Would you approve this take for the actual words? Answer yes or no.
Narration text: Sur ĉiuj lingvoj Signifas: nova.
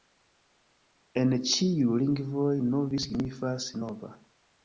no